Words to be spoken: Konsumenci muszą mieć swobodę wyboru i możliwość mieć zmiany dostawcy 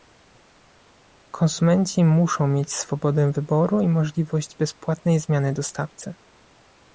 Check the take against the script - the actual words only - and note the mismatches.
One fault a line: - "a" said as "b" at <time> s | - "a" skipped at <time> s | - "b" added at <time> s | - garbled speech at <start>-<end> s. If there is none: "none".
- "mieć" said as "bezpłatnej" at 4.6 s